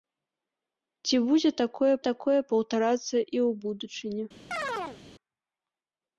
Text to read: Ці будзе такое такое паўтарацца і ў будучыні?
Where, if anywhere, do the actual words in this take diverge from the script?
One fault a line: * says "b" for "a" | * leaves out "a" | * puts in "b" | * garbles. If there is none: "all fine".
all fine